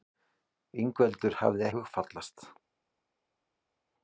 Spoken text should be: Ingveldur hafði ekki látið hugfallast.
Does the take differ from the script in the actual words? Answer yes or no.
yes